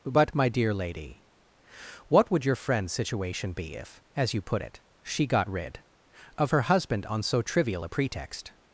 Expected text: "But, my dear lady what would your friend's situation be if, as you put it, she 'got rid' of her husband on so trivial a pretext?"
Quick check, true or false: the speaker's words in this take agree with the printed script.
true